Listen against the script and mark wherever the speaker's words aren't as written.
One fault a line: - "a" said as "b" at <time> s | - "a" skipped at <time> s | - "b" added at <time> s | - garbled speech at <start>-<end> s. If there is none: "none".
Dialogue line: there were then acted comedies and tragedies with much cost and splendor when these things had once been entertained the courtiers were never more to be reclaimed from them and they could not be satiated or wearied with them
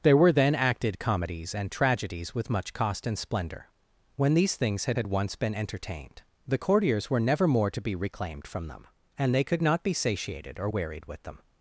- "had" added at 4.9 s